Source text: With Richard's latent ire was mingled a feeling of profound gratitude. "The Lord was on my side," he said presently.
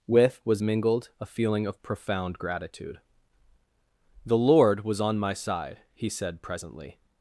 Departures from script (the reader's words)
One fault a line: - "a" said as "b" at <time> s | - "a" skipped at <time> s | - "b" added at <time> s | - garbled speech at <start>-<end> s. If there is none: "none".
- "Richard's latent ire" skipped at 0.4 s